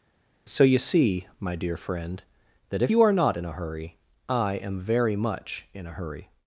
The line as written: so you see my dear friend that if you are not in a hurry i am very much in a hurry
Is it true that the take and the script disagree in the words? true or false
false